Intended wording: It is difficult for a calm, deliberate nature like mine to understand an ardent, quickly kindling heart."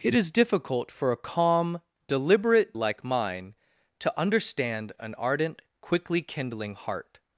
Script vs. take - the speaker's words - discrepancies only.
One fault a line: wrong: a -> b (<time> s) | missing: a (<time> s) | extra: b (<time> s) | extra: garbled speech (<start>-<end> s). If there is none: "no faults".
missing: nature (2.8 s)